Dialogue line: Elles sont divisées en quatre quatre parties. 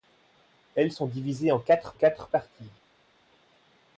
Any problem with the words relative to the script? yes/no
no